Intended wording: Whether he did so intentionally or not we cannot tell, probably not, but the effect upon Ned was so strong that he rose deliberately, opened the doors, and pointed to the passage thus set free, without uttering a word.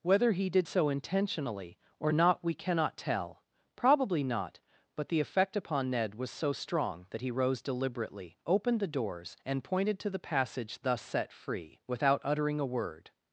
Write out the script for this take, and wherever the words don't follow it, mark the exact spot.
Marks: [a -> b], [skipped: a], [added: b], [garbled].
Whether he did so intentionally or not we cannot tell, probably not, but the effect upon Ned was so strong that he rose deliberately, opened the doors, and pointed to the passage thus set free, without uttering a word.